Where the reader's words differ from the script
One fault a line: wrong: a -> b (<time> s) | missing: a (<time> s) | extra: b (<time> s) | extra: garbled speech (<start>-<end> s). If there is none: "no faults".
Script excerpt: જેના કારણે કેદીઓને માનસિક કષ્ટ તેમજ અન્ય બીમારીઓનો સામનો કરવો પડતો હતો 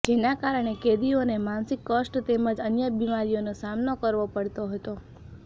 no faults